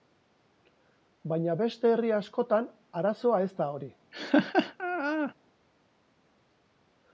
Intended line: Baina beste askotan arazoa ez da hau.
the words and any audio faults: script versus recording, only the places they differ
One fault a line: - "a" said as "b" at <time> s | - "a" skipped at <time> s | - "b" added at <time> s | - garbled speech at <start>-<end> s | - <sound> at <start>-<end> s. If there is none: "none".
- "herri" added at 1.9 s
- "hau" said as "hori" at 3.8 s
- laugh at 4.1-5.3 s